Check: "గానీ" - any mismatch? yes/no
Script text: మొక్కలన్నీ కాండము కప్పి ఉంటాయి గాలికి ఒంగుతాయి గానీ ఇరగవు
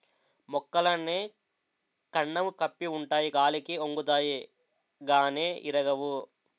no